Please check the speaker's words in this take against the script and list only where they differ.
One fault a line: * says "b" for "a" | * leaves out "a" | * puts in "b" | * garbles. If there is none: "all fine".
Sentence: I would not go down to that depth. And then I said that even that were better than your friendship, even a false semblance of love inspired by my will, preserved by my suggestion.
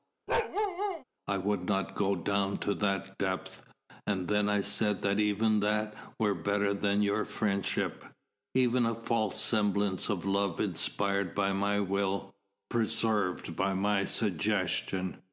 all fine